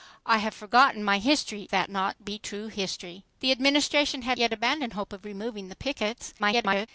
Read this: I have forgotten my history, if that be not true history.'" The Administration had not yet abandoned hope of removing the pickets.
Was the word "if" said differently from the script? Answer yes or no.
yes